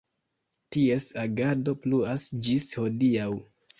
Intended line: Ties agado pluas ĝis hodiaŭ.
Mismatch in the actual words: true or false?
false